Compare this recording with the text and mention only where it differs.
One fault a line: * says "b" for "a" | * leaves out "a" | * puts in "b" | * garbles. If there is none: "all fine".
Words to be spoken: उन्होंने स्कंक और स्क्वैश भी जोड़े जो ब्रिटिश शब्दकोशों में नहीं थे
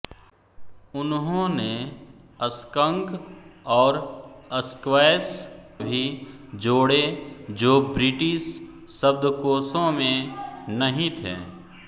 all fine